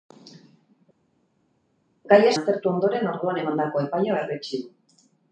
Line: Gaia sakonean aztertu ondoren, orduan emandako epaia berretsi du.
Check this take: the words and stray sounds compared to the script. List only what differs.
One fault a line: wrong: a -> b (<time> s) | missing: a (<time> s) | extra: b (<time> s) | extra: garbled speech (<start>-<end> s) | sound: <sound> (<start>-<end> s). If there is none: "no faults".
missing: sakonean (2.3 s)